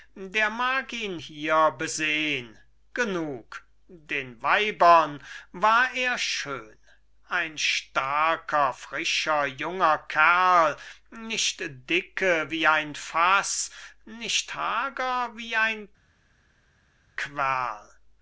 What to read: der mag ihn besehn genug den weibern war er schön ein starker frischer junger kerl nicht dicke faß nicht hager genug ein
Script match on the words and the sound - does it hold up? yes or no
no